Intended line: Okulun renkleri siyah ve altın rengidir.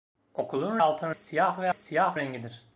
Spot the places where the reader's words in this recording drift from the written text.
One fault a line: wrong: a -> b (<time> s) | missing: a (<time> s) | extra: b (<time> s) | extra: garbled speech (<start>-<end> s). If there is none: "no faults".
wrong: renkleri -> altın (0.8 s)
wrong: altın -> siyah (1.7 s)